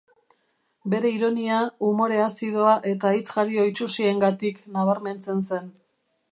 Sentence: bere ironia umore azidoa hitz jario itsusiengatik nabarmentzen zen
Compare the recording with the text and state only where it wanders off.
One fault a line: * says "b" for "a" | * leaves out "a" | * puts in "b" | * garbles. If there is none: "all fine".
* puts in "eta"